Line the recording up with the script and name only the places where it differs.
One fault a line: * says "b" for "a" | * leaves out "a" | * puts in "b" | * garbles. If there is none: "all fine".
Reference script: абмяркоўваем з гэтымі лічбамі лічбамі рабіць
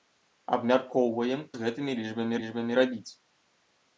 all fine